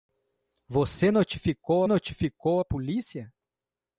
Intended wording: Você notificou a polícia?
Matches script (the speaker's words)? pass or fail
fail